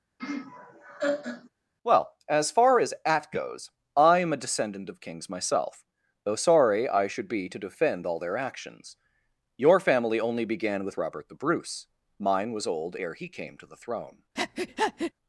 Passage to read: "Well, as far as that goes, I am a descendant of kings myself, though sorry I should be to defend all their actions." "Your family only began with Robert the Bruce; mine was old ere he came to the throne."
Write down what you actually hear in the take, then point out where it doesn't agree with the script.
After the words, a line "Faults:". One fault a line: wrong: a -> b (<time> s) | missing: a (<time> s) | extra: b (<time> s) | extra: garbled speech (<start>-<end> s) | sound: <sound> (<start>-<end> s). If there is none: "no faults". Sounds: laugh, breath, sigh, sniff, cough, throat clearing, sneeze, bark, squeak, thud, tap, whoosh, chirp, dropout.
"Well, as far as at goes, I am a descendant of kings myself, though sorry I should be to defend all their actions." "Your family only began with Robert the Bruce; mine was old ere he came to the throne."
Faults:
sound: laugh (0.2-1.5 s)
wrong: that -> at (3.1 s)
sound: breath (14.4-15.1 s)